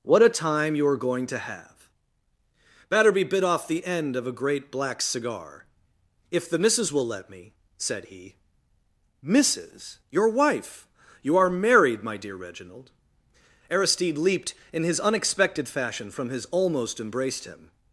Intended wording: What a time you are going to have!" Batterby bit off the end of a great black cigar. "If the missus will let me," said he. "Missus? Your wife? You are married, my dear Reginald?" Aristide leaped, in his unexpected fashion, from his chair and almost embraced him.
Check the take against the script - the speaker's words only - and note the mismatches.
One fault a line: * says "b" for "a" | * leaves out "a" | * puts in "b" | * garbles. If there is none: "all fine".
* leaves out "chair and"